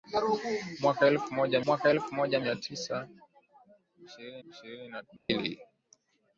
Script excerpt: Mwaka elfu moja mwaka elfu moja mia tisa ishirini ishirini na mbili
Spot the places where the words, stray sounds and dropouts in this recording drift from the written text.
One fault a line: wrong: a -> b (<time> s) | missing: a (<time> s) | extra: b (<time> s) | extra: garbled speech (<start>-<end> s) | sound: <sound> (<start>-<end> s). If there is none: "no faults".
sound: dropout (5.2-5.3 s)